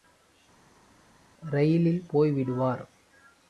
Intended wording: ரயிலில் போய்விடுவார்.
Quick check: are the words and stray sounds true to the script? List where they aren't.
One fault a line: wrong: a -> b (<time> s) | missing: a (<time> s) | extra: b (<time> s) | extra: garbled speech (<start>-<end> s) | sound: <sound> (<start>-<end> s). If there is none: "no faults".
no faults